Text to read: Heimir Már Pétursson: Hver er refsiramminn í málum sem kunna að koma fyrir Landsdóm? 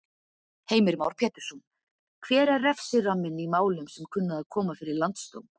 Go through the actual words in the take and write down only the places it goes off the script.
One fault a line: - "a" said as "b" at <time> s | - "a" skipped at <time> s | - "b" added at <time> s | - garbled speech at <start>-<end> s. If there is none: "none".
none